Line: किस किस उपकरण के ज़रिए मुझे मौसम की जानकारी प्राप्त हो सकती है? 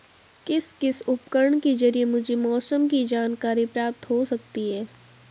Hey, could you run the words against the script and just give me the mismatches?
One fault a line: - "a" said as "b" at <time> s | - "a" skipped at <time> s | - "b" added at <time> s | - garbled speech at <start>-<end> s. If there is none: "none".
none